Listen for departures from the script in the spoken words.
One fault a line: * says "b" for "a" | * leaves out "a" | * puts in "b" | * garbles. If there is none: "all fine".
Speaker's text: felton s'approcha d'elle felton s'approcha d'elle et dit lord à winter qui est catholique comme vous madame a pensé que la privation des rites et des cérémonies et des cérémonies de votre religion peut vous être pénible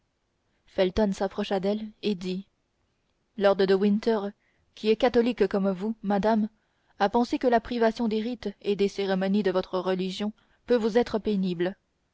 * leaves out "felton s'approcha d'elle"
* says "de" for "à"
* leaves out "et des cérémonies"